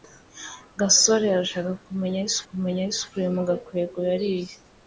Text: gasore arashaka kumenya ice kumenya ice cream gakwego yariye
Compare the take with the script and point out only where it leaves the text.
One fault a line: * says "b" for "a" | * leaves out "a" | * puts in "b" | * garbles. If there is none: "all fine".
all fine